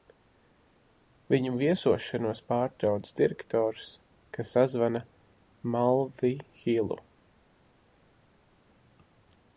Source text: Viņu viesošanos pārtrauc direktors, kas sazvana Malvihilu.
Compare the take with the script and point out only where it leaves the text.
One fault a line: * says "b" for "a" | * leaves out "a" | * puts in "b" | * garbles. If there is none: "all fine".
all fine